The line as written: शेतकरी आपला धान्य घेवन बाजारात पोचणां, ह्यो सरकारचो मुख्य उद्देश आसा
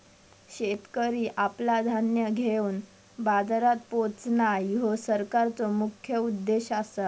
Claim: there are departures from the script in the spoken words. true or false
false